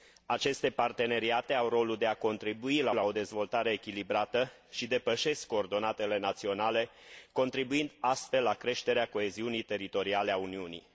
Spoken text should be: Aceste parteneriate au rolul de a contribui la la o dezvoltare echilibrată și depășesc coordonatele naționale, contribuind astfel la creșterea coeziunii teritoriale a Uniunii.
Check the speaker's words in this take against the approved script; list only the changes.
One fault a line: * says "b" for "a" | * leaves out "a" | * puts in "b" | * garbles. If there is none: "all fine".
all fine